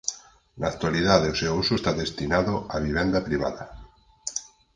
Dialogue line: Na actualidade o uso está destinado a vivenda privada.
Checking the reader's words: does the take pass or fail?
fail